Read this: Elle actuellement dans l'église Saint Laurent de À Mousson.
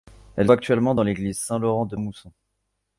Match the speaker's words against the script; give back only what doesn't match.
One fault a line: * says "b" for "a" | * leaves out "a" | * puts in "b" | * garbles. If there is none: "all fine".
all fine